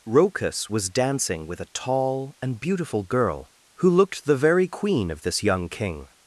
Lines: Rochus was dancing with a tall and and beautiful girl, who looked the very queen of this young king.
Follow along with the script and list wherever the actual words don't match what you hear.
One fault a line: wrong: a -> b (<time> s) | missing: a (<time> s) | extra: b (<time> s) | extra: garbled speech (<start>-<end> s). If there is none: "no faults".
missing: and (2.6 s)